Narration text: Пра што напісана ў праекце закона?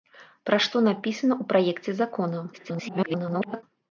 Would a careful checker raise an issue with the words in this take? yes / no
yes